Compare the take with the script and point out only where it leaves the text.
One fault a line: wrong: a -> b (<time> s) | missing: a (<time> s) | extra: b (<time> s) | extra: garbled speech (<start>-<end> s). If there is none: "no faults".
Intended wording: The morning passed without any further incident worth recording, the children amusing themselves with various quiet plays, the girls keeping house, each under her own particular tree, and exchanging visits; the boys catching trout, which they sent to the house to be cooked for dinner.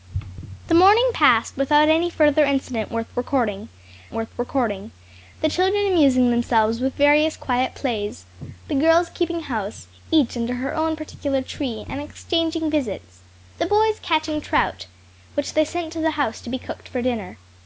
extra: worth recording (4.1 s)